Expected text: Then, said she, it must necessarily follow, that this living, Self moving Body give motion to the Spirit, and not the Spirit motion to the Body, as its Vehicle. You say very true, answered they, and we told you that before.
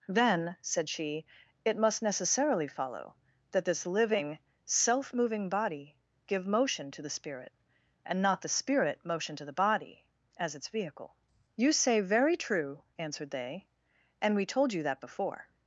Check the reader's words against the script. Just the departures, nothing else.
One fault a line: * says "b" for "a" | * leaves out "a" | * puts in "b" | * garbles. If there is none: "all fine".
all fine